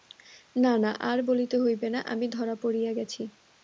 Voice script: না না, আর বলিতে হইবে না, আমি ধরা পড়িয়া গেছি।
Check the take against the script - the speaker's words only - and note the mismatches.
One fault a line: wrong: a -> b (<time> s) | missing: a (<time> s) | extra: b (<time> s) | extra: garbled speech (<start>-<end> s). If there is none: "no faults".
no faults